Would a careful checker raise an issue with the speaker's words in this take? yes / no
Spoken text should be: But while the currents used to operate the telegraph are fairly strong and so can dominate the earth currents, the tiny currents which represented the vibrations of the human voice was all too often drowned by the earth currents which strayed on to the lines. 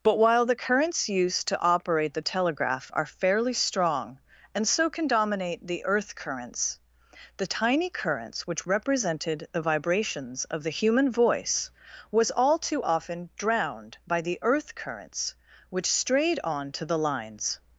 no